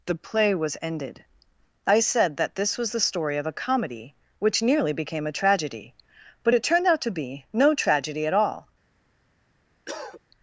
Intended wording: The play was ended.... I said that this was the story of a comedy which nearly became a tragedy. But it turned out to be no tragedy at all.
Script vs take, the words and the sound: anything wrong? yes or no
yes